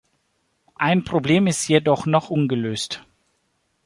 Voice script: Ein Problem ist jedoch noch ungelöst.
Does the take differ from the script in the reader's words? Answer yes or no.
no